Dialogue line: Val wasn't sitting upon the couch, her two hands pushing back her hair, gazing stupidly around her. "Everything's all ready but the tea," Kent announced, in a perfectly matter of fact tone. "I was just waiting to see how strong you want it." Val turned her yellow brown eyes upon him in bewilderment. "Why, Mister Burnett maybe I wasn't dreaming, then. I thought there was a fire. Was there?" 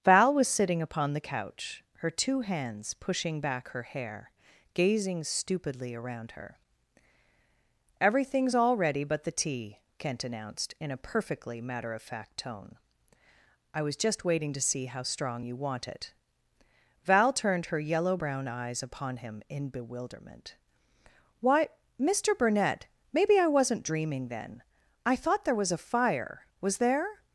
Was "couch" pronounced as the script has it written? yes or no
yes